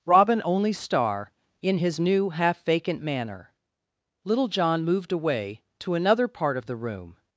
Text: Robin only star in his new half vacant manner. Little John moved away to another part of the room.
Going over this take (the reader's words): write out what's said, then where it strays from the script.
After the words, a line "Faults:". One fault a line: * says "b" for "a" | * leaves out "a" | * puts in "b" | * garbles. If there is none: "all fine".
Robin only star in his new half vacant manner. Little John moved away to another part of the room.
Faults:
all fine